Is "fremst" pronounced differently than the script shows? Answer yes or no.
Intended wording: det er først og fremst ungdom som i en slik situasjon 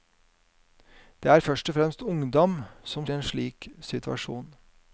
no